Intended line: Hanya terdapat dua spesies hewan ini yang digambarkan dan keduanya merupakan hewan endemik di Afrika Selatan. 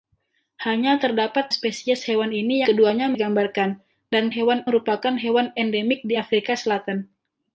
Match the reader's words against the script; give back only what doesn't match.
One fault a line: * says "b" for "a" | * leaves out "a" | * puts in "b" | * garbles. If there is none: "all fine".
* leaves out "dua"
* says "keduanya" for "yang"
* says "hewan" for "keduanya"